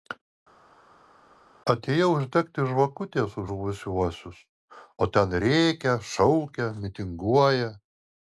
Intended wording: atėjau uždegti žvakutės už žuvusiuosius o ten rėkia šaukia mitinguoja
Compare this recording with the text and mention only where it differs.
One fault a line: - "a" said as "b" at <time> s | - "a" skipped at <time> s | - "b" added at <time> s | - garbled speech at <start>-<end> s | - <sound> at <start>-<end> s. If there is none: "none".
none